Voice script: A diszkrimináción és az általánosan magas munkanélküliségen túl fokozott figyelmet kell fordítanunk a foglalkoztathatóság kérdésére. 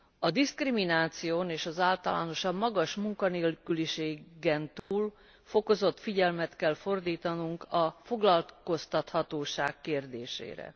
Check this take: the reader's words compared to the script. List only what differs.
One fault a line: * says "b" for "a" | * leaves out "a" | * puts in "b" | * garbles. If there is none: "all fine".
all fine